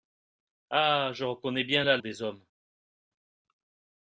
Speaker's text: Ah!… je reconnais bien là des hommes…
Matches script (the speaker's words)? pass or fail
pass